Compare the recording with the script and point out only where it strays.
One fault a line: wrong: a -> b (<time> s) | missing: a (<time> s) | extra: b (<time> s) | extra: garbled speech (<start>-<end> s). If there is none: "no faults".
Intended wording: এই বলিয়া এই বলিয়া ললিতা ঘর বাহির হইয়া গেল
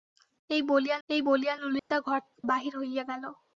no faults